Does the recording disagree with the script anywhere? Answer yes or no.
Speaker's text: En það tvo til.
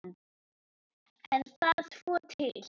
no